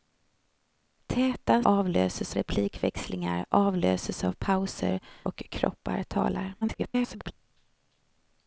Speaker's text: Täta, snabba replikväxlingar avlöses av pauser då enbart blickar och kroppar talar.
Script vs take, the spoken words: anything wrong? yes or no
yes